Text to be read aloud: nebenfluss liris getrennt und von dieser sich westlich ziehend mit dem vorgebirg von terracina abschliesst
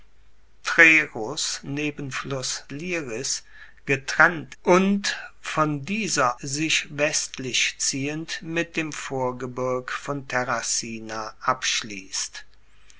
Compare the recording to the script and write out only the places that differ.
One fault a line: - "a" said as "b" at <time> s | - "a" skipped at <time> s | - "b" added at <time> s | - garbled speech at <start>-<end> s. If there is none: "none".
none